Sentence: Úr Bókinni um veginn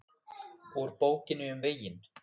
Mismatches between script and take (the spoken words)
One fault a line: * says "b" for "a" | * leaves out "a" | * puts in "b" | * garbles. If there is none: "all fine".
all fine